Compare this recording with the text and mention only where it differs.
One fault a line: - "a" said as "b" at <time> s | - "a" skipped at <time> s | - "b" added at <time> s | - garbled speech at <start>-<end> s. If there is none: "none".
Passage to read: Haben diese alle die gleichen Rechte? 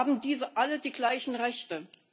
none